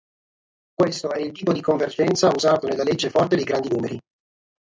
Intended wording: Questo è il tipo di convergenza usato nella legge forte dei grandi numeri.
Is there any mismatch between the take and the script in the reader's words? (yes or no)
no